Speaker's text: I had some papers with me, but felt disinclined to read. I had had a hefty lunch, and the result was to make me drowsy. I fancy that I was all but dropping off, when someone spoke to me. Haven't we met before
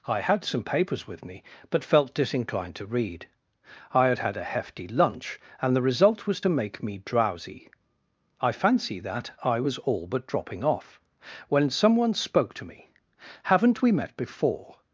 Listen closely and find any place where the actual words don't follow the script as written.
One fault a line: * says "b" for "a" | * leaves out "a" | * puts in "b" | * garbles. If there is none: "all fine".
all fine